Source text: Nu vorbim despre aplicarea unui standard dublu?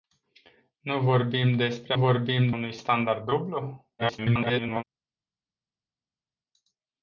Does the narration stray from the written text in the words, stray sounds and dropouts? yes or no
yes